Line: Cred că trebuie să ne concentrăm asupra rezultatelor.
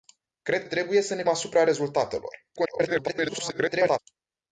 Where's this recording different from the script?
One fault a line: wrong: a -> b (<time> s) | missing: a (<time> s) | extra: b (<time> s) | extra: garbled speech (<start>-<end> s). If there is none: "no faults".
missing: că (0.6 s)
missing: concentrăm (1.2 s)
extra: garbled speech (2.6-4.0 s)